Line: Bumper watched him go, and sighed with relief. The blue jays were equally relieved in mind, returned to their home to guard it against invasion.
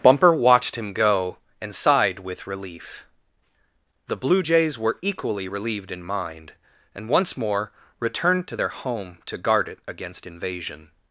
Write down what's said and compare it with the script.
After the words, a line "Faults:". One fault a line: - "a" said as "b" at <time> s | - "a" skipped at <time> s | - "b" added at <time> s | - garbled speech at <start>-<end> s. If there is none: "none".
Bumper watched him go, and sighed with relief. The blue jays were equally relieved in mind, and once more returned to their home to guard it against invasion.
Faults:
- "and once more" added at 6.9 s